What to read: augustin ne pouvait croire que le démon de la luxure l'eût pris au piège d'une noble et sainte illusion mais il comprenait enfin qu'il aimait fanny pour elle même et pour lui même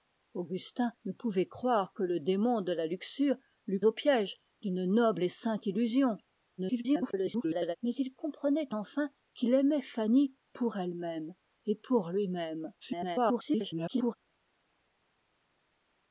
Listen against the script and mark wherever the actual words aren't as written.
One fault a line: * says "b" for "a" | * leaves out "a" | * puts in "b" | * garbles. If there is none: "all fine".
* leaves out "pris"
* garbles
* garbles